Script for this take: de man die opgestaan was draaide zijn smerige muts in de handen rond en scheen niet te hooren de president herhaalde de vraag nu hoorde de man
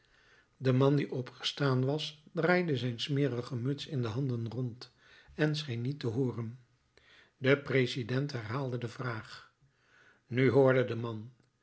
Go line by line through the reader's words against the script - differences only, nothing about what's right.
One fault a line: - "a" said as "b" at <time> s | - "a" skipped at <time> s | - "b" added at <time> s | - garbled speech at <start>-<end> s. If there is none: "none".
none